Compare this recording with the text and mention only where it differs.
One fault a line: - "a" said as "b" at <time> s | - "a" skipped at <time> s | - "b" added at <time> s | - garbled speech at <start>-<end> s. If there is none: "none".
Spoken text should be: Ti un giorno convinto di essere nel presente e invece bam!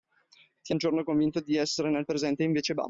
none